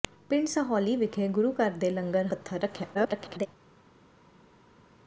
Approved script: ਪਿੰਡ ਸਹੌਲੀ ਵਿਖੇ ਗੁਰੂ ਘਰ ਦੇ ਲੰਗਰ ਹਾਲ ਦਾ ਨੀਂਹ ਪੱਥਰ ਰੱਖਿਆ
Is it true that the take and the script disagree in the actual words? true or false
true